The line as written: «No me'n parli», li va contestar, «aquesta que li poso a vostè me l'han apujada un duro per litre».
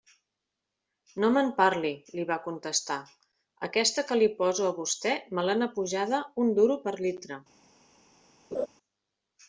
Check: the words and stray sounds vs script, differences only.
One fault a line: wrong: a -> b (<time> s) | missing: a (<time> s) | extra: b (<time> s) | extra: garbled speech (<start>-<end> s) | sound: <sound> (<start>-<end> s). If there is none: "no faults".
sound: laugh (8.5-8.7 s)